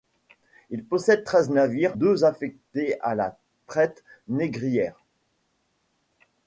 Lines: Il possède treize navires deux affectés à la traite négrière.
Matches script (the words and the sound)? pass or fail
pass